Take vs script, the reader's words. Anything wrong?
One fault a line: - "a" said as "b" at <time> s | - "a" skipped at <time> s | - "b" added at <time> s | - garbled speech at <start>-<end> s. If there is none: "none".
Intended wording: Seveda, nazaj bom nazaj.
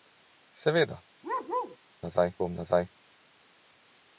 none